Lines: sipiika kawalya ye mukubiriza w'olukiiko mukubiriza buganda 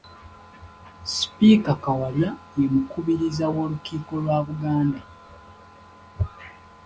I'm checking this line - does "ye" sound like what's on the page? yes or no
yes